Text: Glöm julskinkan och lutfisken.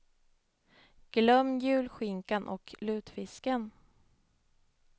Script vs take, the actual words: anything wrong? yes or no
no